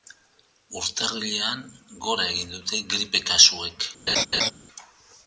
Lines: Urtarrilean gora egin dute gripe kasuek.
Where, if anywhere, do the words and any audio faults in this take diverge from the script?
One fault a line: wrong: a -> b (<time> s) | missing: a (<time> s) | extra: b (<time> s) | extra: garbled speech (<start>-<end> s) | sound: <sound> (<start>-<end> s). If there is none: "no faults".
sound: laugh (4.1-4.5 s)